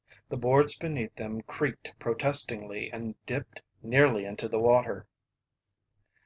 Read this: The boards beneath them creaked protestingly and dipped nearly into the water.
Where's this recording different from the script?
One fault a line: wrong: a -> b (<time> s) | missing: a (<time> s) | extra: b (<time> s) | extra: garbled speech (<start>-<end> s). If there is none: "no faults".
no faults